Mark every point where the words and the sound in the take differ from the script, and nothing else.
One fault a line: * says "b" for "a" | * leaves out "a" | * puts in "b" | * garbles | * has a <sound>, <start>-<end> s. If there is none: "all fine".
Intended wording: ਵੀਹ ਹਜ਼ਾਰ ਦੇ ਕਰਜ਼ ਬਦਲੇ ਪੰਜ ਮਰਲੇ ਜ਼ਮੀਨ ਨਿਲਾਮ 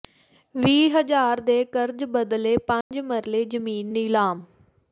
* has a dropout, 2.8-2.9 s